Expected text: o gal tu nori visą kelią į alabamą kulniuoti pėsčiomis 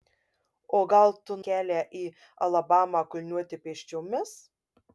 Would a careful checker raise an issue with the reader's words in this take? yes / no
yes